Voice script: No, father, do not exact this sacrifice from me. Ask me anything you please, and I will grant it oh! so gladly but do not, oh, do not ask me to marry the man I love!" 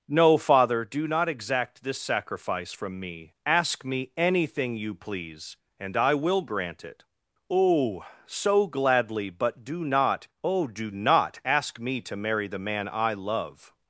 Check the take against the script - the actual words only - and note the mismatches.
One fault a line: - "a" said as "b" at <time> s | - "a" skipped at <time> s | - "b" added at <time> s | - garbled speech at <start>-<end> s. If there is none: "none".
none